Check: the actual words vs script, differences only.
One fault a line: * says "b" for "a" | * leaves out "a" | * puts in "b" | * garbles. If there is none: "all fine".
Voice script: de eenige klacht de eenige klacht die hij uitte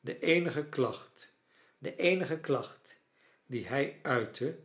all fine